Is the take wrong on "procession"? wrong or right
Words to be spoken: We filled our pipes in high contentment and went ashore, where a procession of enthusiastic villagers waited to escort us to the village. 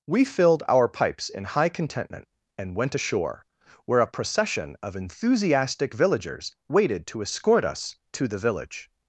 right